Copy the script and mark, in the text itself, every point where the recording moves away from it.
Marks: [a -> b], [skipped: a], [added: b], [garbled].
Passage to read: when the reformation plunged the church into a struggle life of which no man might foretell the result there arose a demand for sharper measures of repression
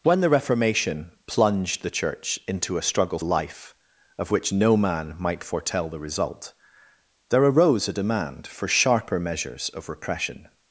when the reformation plunged the church into a struggle life of which no man might foretell the result there arose a demand for sharper measures of repression